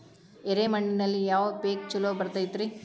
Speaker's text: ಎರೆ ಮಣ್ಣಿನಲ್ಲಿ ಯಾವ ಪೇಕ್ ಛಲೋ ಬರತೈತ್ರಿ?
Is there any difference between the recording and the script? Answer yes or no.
no